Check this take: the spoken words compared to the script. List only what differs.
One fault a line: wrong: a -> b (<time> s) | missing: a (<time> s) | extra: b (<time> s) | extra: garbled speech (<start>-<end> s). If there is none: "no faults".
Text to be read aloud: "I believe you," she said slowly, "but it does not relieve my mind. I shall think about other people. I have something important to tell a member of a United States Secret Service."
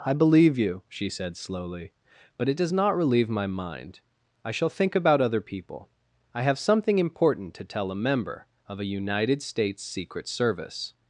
no faults